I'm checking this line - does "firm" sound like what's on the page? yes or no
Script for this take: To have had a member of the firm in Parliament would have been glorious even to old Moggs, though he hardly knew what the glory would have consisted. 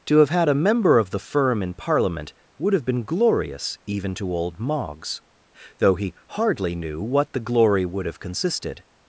yes